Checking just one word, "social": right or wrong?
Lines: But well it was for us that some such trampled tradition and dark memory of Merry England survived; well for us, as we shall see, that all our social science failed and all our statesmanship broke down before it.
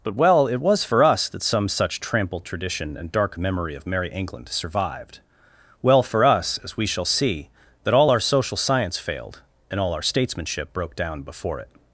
right